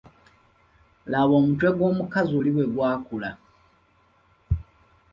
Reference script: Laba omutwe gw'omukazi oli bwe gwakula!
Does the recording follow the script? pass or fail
pass